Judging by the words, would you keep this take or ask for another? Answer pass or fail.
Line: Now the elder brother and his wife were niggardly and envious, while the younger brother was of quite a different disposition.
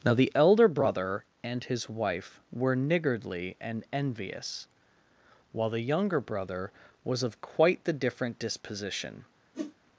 fail